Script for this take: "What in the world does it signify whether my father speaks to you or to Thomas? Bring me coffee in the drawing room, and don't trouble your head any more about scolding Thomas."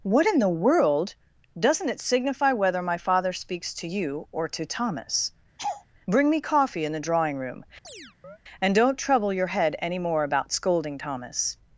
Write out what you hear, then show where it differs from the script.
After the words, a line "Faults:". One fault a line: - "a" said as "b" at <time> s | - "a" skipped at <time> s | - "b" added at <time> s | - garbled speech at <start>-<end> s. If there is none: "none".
"What in the world doesn't it signify whether my father speaks to you or to Thomas? Bring me coffee in the drawing room, and don't trouble your head any more about scolding Thomas."
Faults:
- "does" said as "doesn't" at 1.6 s